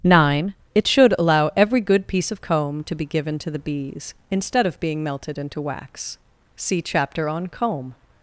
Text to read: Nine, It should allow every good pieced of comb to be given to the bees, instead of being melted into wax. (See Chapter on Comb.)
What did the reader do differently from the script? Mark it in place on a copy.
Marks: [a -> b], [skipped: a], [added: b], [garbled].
Nine, It should allow every good [pieced -> piece] of comb to be given to the bees, instead of being melted into wax. (See Chapter on Comb.)